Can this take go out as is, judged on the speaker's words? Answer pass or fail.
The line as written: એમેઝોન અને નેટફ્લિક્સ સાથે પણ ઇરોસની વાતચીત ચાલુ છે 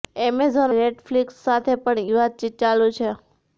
fail